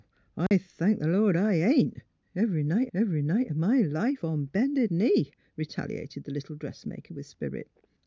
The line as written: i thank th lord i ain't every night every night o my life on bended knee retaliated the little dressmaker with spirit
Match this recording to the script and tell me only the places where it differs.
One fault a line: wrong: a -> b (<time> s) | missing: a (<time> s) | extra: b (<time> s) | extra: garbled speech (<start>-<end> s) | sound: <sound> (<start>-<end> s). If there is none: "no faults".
sound: dropout (0.5-0.5 s)